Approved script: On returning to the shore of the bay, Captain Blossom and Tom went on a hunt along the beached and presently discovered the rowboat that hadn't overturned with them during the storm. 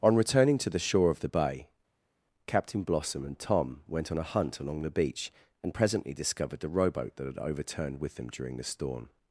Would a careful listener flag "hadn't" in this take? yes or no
yes